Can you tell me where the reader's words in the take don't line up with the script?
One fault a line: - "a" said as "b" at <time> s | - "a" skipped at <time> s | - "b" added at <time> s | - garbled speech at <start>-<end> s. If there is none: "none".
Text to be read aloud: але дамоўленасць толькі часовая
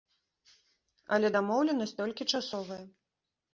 none